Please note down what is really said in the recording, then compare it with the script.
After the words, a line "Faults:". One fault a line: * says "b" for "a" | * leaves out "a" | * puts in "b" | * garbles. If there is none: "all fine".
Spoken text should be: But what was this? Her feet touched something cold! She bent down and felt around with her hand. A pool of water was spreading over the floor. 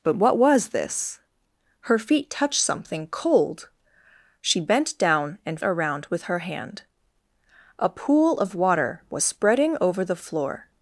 But what was this? Her feet touched something cold! She bent down and around with her hand. A pool of water was spreading over the floor.
Faults:
* leaves out "felt"